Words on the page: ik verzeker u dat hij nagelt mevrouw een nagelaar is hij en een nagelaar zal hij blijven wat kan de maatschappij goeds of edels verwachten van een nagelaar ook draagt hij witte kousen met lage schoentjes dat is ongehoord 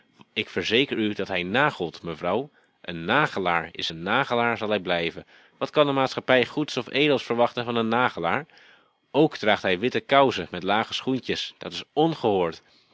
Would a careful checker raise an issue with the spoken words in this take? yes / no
yes